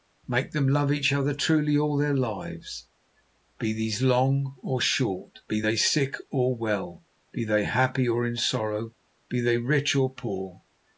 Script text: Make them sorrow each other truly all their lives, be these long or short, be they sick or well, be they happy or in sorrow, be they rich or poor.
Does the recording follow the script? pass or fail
fail